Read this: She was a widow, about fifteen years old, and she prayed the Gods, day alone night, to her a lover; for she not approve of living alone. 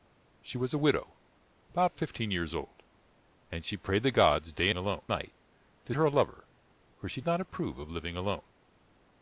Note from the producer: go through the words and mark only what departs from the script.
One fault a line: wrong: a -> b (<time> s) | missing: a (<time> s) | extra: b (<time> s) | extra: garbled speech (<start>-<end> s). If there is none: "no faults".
no faults